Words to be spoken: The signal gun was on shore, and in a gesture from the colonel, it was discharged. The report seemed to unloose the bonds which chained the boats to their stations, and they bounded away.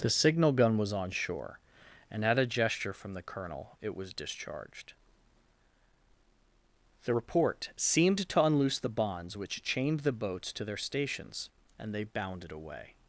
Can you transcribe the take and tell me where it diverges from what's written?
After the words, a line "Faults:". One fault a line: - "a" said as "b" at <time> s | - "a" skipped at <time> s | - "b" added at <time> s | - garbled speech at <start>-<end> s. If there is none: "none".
The signal gun was on shore, and at a gesture from the colonel, it was discharged. The report seemed to unloose the bonds which chained the boats to their stations, and they bounded away.
Faults:
- "in" said as "at" at 2.2 s